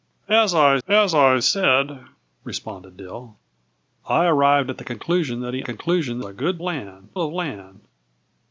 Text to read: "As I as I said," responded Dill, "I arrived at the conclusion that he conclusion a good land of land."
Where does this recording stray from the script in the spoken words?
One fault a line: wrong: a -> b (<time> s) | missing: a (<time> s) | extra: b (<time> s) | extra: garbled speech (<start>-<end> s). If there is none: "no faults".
no faults